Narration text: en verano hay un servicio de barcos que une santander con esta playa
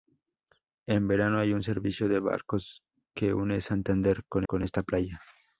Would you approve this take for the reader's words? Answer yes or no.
no